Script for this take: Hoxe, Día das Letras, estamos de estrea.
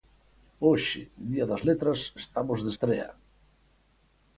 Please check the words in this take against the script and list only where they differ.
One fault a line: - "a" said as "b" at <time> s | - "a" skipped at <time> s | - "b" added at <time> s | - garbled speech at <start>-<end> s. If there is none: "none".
none